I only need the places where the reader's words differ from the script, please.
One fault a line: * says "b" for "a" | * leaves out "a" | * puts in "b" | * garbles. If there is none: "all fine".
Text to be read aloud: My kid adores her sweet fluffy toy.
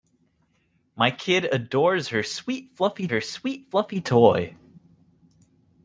* puts in "her sweet fluffy"